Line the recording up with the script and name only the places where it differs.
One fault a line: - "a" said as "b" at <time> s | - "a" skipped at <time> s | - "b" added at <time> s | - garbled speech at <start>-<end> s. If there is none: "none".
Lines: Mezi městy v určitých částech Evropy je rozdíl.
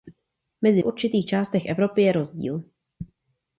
- "městy" skipped at 0.8 s